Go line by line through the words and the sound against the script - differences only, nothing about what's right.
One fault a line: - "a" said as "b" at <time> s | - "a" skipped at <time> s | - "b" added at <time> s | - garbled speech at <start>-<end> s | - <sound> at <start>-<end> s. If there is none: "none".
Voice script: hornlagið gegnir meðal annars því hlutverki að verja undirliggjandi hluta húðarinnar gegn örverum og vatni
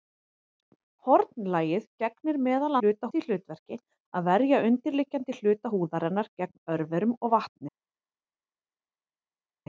- "annars" said as "hluta" at 2.8 s